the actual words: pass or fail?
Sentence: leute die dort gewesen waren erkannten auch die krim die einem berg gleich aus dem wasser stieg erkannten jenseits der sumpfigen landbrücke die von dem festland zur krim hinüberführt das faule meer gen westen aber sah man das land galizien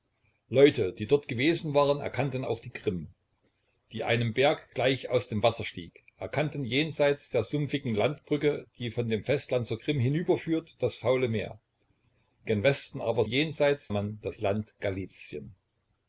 fail